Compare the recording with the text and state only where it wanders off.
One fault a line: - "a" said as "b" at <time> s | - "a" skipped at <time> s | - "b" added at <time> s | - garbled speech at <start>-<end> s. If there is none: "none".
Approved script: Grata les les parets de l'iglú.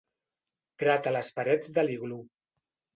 - "les" skipped at 1.3 s